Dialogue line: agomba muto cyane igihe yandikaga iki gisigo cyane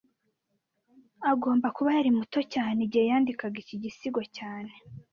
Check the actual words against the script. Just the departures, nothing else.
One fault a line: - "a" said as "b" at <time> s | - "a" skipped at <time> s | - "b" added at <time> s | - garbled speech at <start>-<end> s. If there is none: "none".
- "kuba yari" added at 1.8 s